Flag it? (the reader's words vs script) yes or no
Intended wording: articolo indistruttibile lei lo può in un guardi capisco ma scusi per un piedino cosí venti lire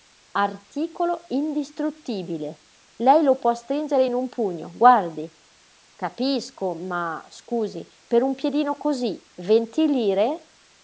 yes